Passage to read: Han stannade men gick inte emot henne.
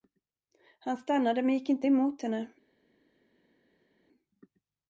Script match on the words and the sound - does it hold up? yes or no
yes